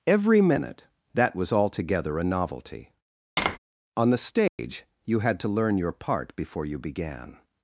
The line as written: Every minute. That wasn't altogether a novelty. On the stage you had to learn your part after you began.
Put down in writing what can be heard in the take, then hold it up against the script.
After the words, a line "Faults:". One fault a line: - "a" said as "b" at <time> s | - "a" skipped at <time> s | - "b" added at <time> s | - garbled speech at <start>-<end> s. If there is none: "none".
Every minute. That was altogether a novelty. On the stage you had to learn your part before you began.
Faults:
- "wasn't" said as "was" at 1.4 s
- "after" said as "before" at 6.4 s